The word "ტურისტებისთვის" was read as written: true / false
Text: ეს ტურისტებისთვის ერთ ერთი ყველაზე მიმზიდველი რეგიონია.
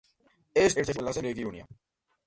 false